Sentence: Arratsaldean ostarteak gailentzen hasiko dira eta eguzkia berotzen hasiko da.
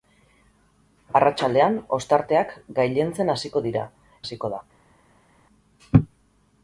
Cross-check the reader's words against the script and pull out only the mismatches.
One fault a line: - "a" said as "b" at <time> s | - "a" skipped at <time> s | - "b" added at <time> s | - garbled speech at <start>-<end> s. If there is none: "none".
- "eta eguzkia berotzen" skipped at 3.9 s